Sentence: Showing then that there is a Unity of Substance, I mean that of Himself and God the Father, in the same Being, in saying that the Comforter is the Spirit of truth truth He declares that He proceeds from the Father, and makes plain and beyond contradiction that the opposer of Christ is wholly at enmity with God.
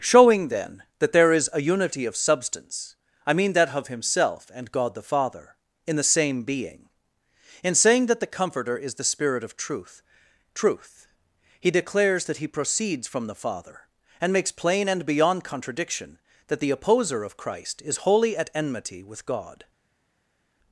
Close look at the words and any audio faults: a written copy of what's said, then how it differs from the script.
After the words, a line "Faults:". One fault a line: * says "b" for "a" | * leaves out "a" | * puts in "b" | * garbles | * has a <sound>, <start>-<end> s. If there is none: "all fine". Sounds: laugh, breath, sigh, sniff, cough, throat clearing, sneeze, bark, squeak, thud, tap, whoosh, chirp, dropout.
Showing then that there is a Unity of Substance, I mean that of Himself and God the Father, in the same Being, in saying that the Comforter is the Spirit of truth truth He declares that He proceeds from the Father, and makes plain and beyond contradiction that the opposer of Christ is wholly at enmity with God.
Faults:
all fine